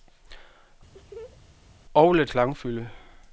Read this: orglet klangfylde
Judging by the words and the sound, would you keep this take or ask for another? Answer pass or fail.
fail